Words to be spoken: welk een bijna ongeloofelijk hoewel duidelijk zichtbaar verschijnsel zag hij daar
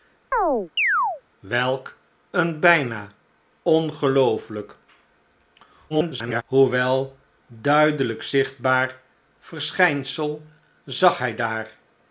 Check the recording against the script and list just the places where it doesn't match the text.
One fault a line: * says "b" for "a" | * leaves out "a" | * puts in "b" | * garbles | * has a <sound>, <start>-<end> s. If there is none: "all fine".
* has a chirp, 0.3-1.2 s
* garbles